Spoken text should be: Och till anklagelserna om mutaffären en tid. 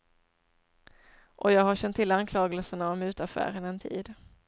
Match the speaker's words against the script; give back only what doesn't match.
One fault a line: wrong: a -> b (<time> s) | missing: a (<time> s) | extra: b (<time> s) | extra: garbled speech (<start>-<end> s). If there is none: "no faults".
extra: jag har känt (1.5 s)